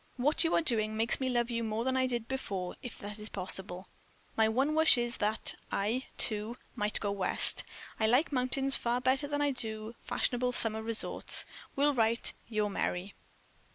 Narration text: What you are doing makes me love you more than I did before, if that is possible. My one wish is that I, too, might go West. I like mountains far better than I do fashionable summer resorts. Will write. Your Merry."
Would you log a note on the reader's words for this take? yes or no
no